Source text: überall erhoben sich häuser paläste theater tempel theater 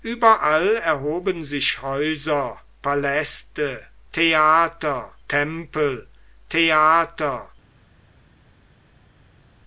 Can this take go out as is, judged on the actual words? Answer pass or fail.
pass